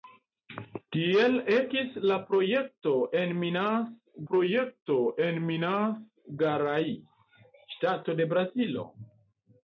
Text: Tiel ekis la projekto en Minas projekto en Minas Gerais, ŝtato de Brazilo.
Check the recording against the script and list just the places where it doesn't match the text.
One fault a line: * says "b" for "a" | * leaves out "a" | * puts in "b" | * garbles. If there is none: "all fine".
all fine